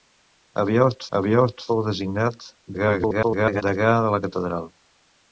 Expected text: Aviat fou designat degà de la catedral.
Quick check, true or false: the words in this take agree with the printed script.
false